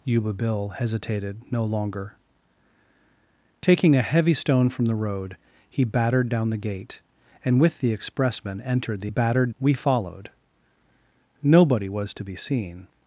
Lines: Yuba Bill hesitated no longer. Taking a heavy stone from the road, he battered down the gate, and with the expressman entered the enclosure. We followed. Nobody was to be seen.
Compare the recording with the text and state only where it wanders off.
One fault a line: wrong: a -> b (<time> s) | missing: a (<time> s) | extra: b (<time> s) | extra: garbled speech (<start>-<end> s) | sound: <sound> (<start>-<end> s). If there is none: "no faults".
wrong: enclosure -> battered (9.1 s)